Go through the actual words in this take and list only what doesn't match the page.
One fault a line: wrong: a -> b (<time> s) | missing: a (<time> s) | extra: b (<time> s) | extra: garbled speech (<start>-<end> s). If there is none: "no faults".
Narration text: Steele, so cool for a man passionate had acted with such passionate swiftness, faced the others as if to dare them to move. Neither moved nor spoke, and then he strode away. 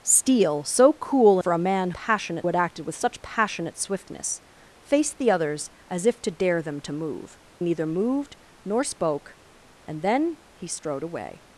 no faults